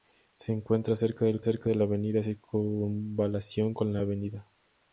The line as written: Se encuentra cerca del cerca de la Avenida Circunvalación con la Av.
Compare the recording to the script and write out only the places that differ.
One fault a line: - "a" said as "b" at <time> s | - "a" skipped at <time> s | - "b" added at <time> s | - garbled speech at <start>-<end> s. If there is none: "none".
none